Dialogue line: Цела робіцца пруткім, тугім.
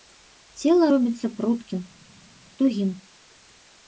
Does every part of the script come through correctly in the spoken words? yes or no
yes